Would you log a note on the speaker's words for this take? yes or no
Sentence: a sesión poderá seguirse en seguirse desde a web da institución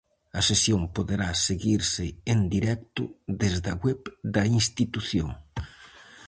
yes